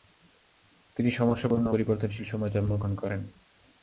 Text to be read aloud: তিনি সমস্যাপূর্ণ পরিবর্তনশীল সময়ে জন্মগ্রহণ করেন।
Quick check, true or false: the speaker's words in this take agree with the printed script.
true